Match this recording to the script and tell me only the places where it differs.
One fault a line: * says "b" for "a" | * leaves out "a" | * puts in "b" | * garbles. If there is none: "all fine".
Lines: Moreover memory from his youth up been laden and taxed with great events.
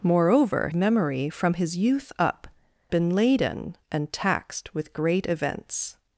all fine